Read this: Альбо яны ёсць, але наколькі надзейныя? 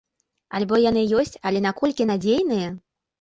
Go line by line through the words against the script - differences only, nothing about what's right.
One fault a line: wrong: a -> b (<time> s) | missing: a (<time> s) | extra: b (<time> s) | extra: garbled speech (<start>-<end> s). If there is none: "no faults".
no faults